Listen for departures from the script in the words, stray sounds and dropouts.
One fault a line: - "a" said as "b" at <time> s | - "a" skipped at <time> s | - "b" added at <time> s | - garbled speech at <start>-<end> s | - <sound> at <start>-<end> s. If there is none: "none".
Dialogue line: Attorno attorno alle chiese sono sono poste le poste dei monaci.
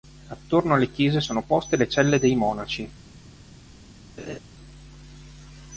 - "attorno" skipped at 0.7 s
- "sono" skipped at 1.4 s
- "poste" said as "celle" at 1.9 s
- laugh at 4.2-4.4 s